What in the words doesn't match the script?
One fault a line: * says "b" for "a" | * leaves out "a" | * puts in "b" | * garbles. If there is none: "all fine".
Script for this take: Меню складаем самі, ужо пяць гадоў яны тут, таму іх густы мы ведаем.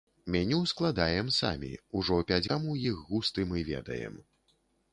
* leaves out "гадоў яны тут"